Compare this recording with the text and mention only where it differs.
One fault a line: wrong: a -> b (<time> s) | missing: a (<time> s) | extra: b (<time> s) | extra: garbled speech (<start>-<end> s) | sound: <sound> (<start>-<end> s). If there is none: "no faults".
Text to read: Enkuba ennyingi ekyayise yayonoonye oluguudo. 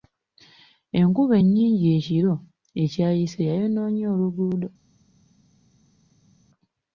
extra: ekiro (2.0 s)